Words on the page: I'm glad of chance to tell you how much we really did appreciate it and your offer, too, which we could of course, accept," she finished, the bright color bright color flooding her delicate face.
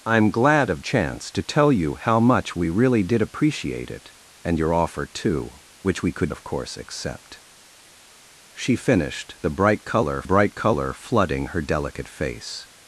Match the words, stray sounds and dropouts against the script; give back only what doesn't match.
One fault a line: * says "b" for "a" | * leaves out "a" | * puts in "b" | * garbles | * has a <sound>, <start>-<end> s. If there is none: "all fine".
all fine